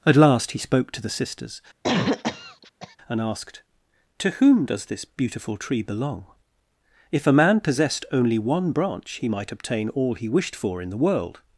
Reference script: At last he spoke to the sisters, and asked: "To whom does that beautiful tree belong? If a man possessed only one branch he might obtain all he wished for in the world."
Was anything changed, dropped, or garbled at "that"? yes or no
yes